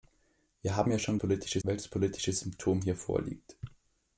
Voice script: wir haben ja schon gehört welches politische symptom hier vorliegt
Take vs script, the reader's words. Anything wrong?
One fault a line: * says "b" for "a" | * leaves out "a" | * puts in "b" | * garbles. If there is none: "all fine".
* says "politische" for "gehört"